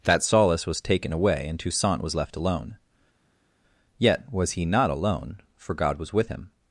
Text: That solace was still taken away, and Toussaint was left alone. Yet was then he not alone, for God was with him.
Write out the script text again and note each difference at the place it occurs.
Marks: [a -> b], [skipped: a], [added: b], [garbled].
That solace was [skipped: still] taken away, and Toussaint was left alone. Yet was [skipped: then] he not alone, for God was with him.